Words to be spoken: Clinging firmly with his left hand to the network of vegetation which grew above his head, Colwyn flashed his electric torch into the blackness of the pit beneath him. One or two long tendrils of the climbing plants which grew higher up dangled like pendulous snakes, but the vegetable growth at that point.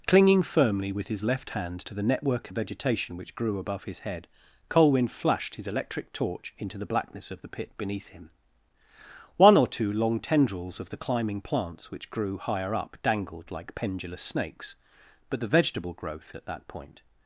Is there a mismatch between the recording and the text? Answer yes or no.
no